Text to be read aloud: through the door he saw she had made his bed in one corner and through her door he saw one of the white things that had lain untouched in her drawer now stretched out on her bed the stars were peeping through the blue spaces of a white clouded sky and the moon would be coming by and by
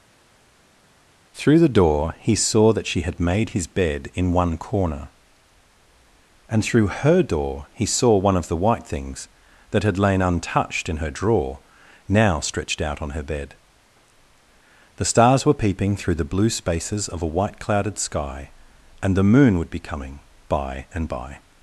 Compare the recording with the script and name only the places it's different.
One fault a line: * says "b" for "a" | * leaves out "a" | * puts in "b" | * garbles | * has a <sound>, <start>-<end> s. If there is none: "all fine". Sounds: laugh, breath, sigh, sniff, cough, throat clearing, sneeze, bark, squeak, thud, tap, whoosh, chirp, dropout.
* puts in "that"